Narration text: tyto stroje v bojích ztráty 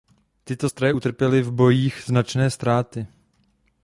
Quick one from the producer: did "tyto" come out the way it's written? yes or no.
yes